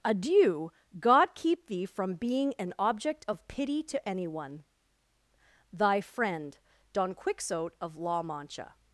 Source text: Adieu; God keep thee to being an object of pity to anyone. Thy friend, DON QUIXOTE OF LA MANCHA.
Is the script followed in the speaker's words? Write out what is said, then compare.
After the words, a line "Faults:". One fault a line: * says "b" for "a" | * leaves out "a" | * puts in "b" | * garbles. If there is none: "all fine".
Adieu; God keep thee from being an object of pity to anyone. Thy friend, DON QUIXOTE OF LA MANCHA.
Faults:
* says "from" for "to"